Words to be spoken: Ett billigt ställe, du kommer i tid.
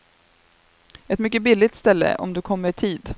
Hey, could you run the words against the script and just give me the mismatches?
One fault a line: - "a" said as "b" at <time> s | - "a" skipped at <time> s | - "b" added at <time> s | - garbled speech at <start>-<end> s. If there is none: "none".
- "mycket" added at 1.2 s
- "om" added at 2.2 s